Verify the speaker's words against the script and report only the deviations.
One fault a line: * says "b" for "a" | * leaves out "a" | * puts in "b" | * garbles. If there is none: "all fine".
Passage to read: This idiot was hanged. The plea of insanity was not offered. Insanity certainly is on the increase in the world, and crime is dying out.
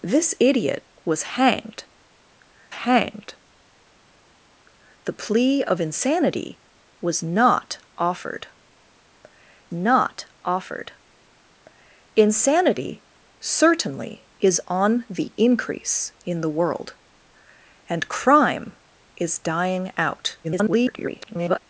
* puts in "hanged"
* puts in "not offered"
* garbles